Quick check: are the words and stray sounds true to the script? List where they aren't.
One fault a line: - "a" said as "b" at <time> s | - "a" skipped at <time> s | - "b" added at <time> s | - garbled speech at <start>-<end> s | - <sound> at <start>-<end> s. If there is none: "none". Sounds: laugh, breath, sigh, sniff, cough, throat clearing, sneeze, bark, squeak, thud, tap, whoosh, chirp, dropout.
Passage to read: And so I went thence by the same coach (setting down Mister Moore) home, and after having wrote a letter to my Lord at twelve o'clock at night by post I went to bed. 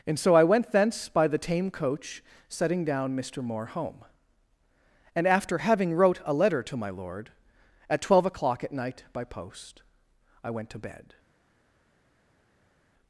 - "same" said as "tame" at 1.4 s